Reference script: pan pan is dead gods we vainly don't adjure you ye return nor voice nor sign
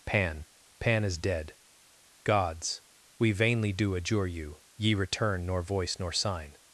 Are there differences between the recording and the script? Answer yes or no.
yes